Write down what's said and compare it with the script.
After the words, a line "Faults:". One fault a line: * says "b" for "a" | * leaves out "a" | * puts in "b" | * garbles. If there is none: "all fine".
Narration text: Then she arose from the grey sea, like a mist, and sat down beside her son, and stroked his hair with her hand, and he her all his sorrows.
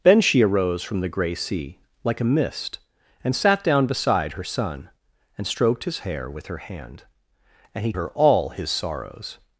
Then she arose from the grey sea, like a mist, and sat down beside her son, and stroked his hair with her hand, and he her all his sorrows.
Faults:
all fine